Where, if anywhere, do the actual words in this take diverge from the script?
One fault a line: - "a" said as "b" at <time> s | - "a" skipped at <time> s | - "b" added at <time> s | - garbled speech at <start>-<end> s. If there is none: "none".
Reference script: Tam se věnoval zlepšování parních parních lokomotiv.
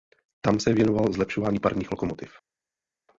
- "parních" skipped at 1.9 s